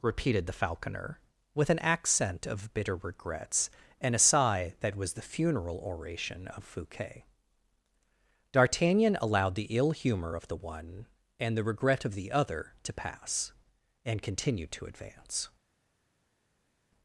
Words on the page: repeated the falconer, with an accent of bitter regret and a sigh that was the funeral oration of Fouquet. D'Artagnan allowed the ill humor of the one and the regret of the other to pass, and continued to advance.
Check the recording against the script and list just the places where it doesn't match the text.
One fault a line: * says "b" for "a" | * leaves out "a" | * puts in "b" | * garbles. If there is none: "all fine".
* says "regrets" for "regret"